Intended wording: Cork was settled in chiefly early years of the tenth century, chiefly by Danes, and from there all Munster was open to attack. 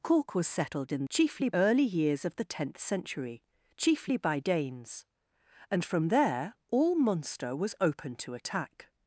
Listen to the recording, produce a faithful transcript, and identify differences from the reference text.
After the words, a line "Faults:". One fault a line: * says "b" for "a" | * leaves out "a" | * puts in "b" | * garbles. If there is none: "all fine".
Cork was settled in chiefly early years of the tenth century, chiefly by Danes, and from there all Munster was open to attack.
Faults:
all fine